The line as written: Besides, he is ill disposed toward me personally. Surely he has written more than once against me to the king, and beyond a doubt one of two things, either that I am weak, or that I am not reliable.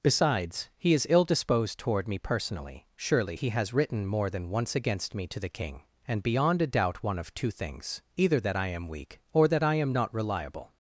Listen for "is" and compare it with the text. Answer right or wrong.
right